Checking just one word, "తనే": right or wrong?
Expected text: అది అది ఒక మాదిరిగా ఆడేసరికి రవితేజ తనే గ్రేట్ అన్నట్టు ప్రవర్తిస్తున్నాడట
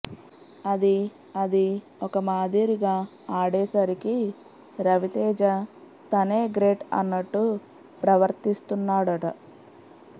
right